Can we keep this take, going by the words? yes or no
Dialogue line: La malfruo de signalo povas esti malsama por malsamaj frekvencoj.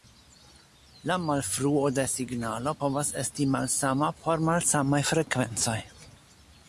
yes